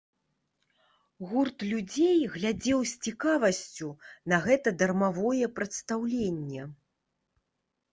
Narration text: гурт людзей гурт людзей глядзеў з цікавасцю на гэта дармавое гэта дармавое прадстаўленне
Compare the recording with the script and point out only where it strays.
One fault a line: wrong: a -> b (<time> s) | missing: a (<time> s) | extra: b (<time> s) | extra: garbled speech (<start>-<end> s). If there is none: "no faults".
missing: гурт людзей (2.2 s)
missing: гэта дармавое (5.4 s)